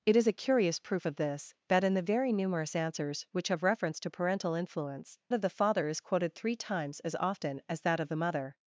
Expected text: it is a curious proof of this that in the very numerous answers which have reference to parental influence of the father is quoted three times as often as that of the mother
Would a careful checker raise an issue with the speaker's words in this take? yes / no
no